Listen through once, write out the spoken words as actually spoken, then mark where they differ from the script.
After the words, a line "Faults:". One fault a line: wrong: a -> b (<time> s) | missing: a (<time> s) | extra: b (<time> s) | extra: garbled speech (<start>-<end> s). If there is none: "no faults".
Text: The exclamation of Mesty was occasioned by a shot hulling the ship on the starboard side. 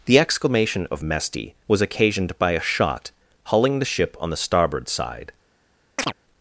The exclamation of Mesty was occasioned by a shot hulling the ship on the starboard side.
Faults:
no faults